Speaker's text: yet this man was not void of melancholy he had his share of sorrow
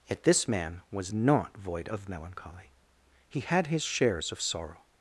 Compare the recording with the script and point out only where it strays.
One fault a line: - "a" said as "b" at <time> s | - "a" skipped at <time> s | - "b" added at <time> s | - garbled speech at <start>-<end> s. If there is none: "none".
- "share" said as "shares" at 3.8 s